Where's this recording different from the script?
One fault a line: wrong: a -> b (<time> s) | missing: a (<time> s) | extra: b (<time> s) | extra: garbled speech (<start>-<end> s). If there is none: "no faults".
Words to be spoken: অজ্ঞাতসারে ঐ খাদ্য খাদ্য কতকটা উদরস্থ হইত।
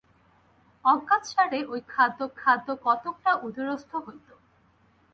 no faults